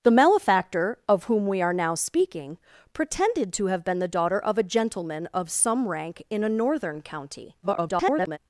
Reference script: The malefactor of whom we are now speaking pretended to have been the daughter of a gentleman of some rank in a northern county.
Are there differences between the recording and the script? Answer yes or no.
yes